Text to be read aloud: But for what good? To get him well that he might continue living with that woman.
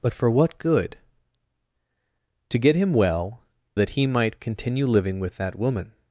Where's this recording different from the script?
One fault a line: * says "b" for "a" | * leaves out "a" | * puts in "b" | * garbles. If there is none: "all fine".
all fine